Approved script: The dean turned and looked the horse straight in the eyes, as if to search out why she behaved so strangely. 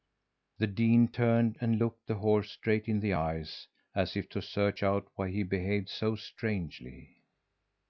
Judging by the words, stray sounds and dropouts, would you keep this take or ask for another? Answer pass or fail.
fail